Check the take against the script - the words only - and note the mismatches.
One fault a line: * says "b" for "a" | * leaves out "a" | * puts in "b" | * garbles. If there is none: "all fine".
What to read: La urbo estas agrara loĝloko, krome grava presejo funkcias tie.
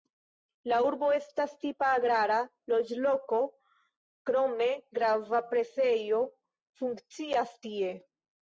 * puts in "tipa"